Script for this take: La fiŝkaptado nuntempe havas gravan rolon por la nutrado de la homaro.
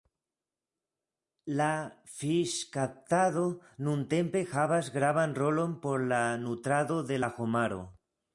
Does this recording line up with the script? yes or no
yes